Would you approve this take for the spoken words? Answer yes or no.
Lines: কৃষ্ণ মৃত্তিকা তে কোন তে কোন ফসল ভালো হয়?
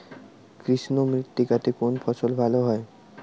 no